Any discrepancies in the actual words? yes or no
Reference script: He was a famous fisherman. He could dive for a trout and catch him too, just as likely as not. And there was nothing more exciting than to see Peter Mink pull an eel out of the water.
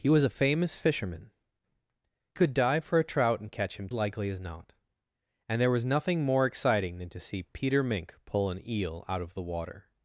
yes